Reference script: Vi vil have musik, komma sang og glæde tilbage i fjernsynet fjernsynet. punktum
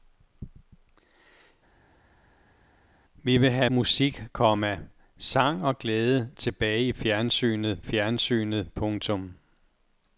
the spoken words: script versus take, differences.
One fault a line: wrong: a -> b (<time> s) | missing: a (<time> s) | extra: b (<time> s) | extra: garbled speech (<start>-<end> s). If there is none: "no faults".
no faults